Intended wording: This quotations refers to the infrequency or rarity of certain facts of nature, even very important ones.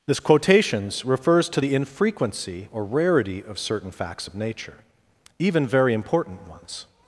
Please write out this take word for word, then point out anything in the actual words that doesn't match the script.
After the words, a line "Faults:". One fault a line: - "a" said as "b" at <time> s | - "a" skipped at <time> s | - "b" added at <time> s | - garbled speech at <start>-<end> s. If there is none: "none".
This quotations refers to the infrequency or rarity of certain facts of nature, even very important ones.
Faults:
none